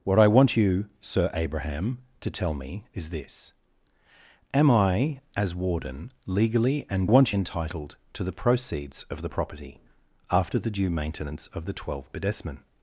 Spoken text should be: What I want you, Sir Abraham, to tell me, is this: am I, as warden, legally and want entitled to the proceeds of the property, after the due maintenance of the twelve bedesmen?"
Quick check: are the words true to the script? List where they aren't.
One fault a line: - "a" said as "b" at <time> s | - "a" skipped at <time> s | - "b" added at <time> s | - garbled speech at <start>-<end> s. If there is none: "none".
none